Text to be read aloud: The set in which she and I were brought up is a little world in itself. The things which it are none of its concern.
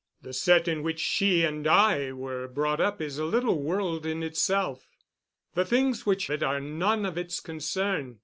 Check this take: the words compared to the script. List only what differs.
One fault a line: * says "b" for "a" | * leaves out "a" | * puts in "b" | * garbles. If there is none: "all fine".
all fine